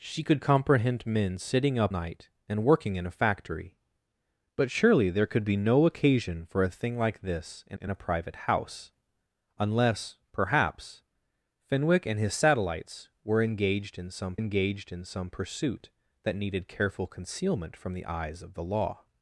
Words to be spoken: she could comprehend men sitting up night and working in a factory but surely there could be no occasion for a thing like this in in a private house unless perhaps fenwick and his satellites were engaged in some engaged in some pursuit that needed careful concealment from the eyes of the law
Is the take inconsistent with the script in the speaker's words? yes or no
no